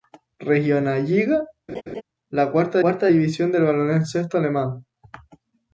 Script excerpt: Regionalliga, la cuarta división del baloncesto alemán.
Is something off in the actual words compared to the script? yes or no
yes